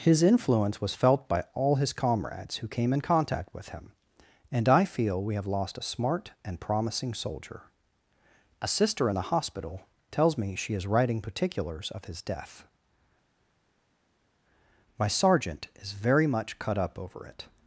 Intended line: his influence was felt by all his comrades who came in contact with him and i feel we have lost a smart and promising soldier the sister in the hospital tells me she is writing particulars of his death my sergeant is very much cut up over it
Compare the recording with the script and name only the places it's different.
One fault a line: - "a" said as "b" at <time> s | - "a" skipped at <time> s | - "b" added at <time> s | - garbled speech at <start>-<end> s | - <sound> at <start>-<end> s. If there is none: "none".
- "the" said as "a" at 8.6 s